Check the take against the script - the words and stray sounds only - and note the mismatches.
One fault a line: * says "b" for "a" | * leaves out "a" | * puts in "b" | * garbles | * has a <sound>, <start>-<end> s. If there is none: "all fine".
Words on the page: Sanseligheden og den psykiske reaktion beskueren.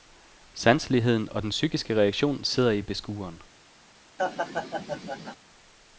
* puts in "sidder i"
* has a laugh, 4.2-5.4 s